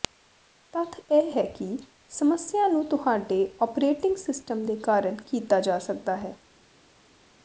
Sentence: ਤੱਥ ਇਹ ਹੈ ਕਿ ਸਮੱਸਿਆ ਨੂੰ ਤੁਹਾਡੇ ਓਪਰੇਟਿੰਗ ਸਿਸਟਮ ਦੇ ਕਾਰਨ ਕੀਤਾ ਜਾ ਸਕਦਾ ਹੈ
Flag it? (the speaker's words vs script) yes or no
no